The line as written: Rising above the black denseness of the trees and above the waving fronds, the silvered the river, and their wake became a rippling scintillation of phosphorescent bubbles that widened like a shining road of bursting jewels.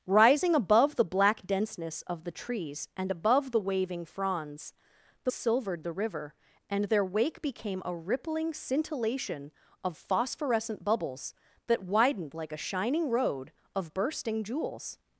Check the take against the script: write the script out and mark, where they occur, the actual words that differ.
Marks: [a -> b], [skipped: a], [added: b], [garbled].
Rising above the black denseness of the trees and above the waving fronds, the silvered the river, and their wake became a rippling scintillation of phosphorescent bubbles that widened like a shining road of bursting jewels.